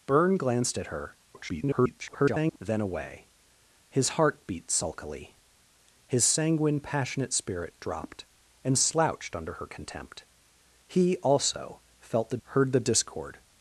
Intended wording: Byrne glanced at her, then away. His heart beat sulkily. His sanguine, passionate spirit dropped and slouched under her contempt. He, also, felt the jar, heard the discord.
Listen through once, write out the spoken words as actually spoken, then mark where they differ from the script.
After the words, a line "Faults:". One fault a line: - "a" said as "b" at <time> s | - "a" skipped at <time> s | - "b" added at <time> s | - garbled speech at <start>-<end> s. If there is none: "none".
Byrne glanced at her, [garbled] then away. His heart beat sulkily. His sanguine, passionate spirit dropped and slouched under her contempt. He, also, felt the heard the discord.
Faults:
- garbled speech at 1.3-2.6 s
- "jar" skipped at 12.4 s